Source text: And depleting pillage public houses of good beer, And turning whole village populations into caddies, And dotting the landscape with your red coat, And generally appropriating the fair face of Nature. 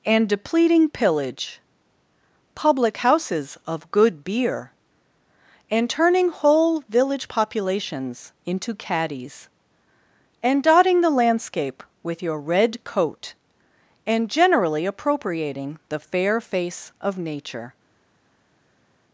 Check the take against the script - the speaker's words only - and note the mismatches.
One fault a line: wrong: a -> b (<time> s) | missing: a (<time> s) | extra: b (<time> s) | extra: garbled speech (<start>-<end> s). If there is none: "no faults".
no faults